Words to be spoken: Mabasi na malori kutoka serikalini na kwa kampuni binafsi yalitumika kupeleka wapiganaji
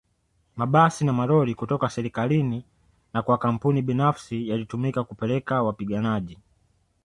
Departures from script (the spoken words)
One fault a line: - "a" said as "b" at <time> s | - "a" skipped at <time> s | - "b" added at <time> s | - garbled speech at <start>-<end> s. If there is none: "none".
none